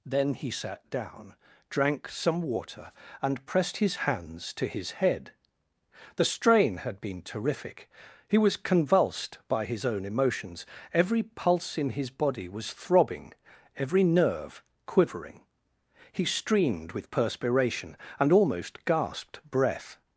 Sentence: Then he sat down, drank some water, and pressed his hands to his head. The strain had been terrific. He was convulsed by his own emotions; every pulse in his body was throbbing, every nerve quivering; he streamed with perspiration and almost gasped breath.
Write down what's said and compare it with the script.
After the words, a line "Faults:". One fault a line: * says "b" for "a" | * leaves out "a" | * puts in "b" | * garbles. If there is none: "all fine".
Then he sat down, drank some water, and pressed his hands to his head. The strain had been terrific. He was convulsed by his own emotions; every pulse in his body was throbbing, every nerve quivering; he streamed with perspiration and almost gasped breath.
Faults:
all fine